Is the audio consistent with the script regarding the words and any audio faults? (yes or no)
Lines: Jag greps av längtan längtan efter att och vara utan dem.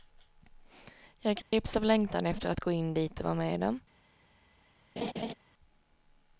no